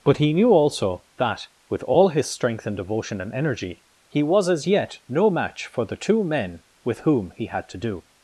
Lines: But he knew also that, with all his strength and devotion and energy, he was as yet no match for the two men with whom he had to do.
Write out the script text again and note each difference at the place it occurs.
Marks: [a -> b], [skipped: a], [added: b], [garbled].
But he knew also that, with all his strength and devotion and energy, he was as yet no match for the two men with whom he had to do.